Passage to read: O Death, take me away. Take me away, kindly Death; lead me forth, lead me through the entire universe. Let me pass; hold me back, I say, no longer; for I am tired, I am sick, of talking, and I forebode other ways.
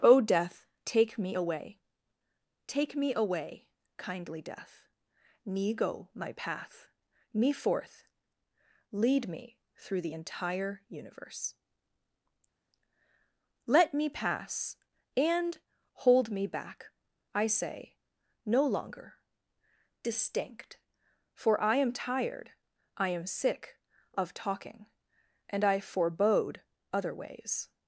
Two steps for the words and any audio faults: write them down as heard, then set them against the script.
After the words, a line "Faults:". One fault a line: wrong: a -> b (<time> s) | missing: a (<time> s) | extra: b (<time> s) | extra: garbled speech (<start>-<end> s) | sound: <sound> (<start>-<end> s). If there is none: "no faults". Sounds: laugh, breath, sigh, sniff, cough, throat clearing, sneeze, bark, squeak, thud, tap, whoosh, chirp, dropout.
O Death, take me away. Take me away, kindly Death; me go my path me forth, lead me through the entire universe. Let me pass; and hold me back, I say, no longer; distinct for I am tired, I am sick, of talking, and I forebode other ways.
Faults:
wrong: lead -> me go my path (5.4 s)
extra: and (15.2 s)
extra: distinct (20.0 s)